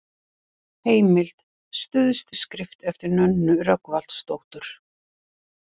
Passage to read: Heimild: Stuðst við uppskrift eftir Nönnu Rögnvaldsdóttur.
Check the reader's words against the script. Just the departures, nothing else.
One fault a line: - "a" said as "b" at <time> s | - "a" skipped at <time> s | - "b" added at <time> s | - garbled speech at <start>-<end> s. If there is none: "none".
- "við" skipped at 2.4 s